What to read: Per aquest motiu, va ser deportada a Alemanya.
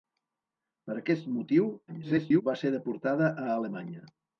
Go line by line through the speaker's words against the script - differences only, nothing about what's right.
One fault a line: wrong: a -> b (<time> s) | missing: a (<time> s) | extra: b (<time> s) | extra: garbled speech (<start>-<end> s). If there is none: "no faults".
extra: garbled speech (1.9-2.4 s)